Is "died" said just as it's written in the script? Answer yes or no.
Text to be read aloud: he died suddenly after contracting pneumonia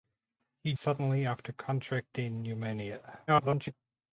no